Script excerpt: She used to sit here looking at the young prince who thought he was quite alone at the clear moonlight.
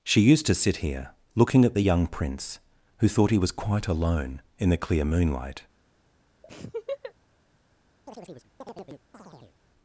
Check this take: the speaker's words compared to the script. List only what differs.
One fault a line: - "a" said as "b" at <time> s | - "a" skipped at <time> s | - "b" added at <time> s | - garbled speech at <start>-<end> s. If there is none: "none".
- "at" said as "in" at 4.6 s